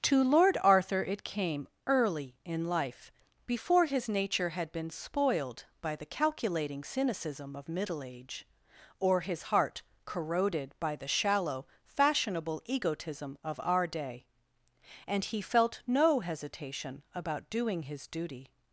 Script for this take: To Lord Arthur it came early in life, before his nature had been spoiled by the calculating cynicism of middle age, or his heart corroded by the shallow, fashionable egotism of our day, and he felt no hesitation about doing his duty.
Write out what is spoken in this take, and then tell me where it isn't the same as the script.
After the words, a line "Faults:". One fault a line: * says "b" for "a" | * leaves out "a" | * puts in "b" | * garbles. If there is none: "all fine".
To Lord Arthur it came early in life, before his nature had been spoiled by the calculating cynicism of middle age, or his heart corroded by the shallow, fashionable egotism of our day, and he felt no hesitation about doing his duty.
Faults:
all fine